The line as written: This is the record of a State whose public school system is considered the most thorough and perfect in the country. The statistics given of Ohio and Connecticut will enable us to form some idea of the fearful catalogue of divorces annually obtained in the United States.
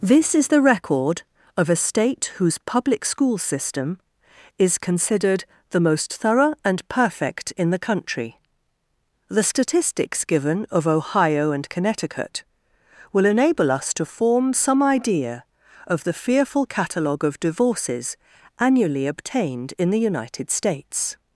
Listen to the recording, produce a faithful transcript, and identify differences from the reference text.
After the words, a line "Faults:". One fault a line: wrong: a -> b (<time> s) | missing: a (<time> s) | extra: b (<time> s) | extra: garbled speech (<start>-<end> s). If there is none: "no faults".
This is the record of a State whose public school system is considered the most thorough and perfect in the country. The statistics given of Ohio and Connecticut will enable us to form some idea of the fearful catalogue of divorces annually obtained in the United States.
Faults:
no faults